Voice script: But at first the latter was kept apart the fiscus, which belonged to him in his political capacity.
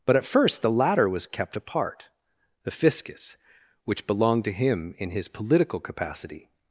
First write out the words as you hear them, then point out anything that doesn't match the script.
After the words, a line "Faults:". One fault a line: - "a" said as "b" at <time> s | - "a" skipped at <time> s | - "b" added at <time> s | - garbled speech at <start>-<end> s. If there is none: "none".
But at first the latter was kept apart the fiscus, which belonged to him in his political capacity.
Faults:
none